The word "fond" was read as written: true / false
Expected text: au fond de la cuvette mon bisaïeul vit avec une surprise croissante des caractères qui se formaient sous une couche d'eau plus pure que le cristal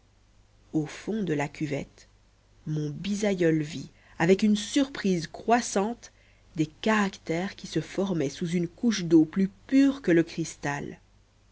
true